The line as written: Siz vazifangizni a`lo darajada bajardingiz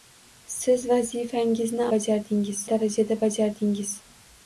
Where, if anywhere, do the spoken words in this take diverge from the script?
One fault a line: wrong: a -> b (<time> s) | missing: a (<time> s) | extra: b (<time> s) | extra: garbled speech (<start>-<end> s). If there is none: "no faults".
wrong: a`lo -> bajardingiz (1.9 s)